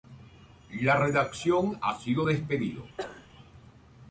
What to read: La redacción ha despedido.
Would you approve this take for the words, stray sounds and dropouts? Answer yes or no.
no